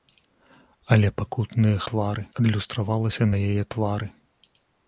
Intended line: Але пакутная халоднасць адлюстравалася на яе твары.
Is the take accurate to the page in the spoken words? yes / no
no